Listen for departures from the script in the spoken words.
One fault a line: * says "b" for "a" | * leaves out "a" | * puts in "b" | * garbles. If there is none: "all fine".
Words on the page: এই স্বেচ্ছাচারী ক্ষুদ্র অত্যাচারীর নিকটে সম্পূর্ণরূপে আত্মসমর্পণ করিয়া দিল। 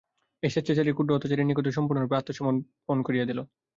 all fine